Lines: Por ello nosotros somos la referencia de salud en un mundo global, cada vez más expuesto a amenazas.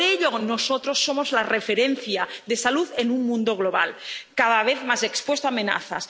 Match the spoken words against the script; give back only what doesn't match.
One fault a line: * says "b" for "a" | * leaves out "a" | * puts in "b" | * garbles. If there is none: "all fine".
all fine